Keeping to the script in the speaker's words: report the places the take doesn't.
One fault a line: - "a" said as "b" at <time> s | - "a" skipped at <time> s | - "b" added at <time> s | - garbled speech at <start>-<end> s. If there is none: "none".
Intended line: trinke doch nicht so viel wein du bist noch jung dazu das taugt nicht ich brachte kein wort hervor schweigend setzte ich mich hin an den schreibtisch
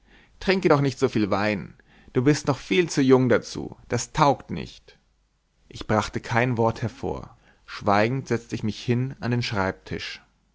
- "viel zu" added at 2.6 s